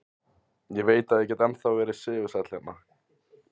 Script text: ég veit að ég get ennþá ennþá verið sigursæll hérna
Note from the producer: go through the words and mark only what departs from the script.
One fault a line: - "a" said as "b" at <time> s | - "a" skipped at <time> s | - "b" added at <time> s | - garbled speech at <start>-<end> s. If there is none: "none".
- "ennþá" skipped at 1.7 s